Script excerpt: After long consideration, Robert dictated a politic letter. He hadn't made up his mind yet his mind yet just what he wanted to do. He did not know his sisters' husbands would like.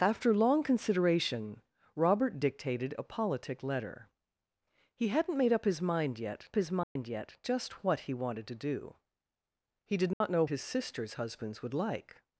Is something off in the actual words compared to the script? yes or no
no